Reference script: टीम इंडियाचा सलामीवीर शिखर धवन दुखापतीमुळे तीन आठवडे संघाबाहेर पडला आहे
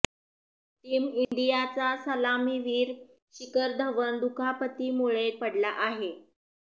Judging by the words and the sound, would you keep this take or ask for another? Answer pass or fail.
fail